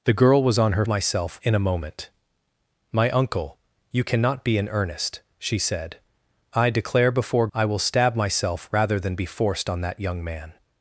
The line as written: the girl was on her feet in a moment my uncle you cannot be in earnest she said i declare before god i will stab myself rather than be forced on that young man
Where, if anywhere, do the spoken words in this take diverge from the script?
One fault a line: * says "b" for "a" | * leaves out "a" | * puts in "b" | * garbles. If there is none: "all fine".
* says "myself" for "feet"
* leaves out "god"